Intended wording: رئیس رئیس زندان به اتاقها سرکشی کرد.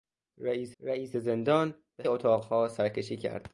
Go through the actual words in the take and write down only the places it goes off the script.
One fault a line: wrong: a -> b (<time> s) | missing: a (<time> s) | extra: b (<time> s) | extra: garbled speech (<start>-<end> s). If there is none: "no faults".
no faults